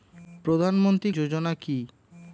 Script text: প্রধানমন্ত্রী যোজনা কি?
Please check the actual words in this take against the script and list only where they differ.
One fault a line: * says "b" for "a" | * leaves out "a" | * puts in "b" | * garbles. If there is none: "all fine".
all fine